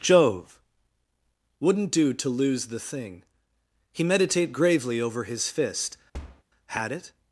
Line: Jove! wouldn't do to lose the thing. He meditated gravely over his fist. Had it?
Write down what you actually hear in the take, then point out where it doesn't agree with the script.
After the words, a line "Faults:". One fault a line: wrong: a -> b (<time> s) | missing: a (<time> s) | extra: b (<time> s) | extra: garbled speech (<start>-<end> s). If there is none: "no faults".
Jove! wouldn't do to lose the thing. He meditate gravely over his fist. Had it?
Faults:
wrong: meditated -> meditate (4.0 s)